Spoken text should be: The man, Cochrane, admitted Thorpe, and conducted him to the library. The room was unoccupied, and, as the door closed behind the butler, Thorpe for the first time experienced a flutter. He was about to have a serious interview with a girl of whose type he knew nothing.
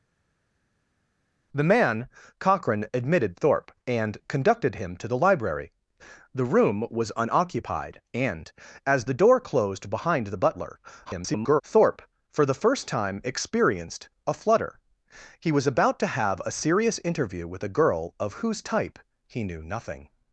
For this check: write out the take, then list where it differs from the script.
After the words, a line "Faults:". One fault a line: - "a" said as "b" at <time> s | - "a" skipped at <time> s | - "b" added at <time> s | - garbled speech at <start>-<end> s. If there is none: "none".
The man, Cochrane, admitted Thorpe, and conducted him to the library. The room was unoccupied, and, as the door closed behind the butler, [garbled] Thorpe for the first time experienced a flutter. He was about to have a serious interview with a girl of whose type he knew nothing.
Faults:
- garbled speech at 11.1-11.6 s